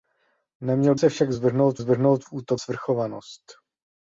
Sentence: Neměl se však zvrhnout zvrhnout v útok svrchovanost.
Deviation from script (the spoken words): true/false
false